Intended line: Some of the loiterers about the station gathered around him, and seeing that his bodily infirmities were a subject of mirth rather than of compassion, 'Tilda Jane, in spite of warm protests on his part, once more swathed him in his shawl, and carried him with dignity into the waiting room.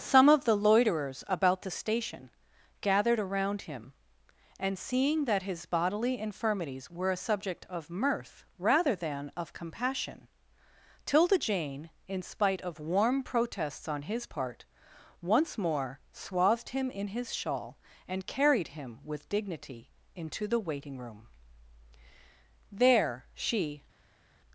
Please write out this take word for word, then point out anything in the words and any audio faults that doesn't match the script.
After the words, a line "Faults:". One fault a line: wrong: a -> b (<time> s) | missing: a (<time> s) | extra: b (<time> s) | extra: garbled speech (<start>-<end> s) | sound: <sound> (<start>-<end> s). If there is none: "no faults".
Some of the loiterers about the station gathered around him, and seeing that his bodily infirmities were a subject of mirth rather than of compassion, 'Tilda Jane, in spite of warm protests on his part, once more swathed him in his shawl, and carried him with dignity into the waiting room. There she
Faults:
extra: There she (22.7 s)